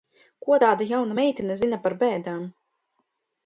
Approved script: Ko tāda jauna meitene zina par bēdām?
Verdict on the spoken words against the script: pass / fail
pass